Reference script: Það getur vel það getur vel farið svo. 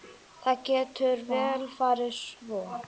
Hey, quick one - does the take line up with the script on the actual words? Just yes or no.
no